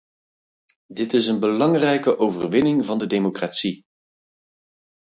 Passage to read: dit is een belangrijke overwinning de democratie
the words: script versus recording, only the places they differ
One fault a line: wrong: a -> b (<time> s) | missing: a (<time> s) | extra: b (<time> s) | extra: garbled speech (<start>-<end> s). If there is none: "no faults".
extra: van (2.9 s)